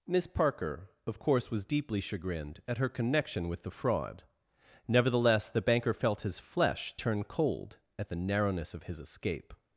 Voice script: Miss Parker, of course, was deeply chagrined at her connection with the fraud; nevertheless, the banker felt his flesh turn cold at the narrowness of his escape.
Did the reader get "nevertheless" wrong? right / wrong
right